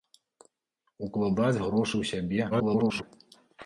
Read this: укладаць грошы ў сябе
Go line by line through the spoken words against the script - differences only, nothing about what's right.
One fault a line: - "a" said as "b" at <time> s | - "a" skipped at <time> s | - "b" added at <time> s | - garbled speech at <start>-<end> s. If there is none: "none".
- garbled speech at 2.5-3.0 s